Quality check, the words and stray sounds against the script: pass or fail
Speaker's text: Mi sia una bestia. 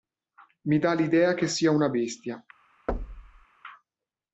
fail